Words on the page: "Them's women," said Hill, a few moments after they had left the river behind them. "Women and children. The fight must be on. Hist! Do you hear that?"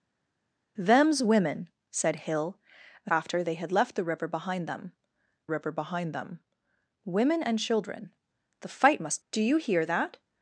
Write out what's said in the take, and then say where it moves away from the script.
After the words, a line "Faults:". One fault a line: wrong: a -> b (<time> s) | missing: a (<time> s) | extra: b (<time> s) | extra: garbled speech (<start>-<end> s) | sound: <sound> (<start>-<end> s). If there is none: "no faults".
"Them's women," said Hill, a after they had left the river behind them river behind them. "Women and children. The fight must! Do you hear that?"
Faults:
missing: few moments (3.1 s)
extra: river behind them (5.5 s)
missing: be on Hist (9.2 s)